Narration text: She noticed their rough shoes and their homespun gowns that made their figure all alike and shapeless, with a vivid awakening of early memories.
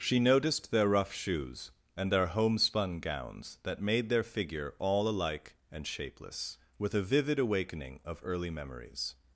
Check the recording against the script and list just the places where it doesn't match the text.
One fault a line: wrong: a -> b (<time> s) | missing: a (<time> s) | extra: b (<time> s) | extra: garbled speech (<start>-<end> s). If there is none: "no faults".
no faults